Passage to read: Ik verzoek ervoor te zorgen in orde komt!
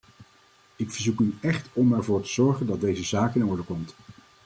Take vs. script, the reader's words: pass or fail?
fail